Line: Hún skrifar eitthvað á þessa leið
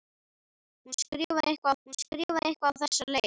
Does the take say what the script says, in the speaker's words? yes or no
no